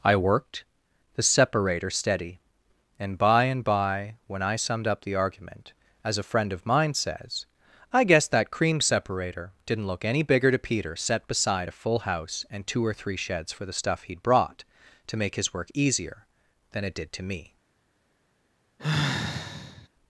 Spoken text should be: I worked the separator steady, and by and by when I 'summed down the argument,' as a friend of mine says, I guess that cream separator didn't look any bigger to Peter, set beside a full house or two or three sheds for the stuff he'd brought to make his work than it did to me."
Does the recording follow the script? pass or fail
fail